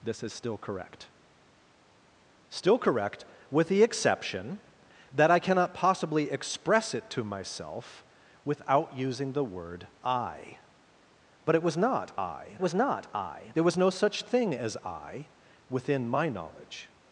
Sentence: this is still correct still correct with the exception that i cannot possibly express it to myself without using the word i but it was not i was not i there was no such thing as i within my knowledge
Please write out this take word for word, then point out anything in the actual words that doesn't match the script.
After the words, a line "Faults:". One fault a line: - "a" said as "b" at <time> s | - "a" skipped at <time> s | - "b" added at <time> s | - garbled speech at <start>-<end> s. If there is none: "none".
this is still correct still correct with the exception that i cannot possibly express it to myself without using the word i but it was not i was not i there was no such thing as i within my knowledge
Faults:
none